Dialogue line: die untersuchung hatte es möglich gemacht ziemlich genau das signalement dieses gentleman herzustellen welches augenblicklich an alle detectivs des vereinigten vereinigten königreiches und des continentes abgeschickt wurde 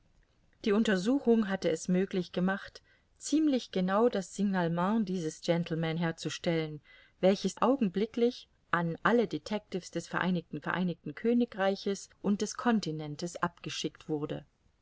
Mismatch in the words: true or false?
false